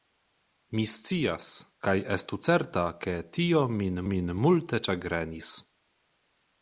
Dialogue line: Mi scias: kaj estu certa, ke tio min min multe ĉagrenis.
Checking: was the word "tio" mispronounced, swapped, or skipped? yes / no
no